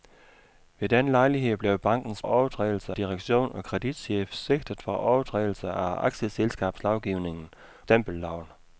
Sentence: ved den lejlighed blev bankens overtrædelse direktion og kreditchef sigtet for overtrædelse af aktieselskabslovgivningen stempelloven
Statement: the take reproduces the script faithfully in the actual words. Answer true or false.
true